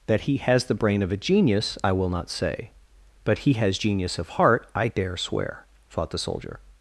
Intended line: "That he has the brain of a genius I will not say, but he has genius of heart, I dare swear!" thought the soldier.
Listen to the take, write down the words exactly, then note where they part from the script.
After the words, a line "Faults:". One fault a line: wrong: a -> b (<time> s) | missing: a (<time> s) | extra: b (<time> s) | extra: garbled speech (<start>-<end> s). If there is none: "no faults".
"That he has the brain of a genius I will not say, but he has genius of heart, I dare swear!" thought the soldier.
Faults:
no faults